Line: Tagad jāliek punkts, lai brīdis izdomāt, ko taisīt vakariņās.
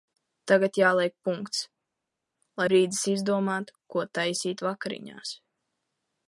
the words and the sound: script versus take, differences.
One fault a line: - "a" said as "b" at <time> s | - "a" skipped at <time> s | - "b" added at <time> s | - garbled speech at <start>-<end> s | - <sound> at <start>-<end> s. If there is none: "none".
none